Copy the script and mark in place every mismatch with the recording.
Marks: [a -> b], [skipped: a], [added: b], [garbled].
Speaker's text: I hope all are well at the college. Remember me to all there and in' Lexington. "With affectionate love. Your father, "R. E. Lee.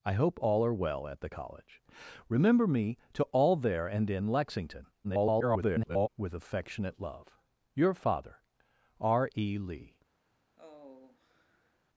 I hope all are well at the college. Remember me to all there and in' Lexington. [garbled] "With affectionate love. Your father, "R. E. Lee.